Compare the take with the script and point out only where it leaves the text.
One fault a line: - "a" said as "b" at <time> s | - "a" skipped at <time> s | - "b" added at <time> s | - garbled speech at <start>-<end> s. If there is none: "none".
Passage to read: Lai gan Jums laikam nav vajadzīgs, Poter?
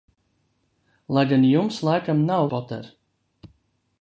- "vajadzīgs" skipped at 2.5 s